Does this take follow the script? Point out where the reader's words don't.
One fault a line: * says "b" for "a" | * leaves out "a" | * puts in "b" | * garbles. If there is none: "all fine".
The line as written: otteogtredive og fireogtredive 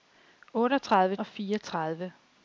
all fine